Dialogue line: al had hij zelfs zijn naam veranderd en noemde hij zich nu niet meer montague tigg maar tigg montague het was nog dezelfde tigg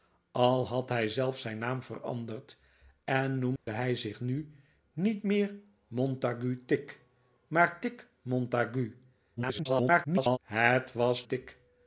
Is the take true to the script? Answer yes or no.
no